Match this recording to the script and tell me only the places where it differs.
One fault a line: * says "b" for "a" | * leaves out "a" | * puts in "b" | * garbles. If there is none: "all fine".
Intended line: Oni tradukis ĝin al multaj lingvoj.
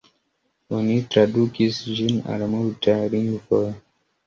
all fine